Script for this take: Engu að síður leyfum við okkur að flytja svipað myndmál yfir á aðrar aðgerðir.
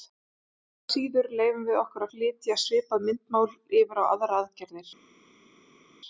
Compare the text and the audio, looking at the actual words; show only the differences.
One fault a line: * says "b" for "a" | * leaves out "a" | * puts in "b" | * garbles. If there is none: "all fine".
* leaves out "að"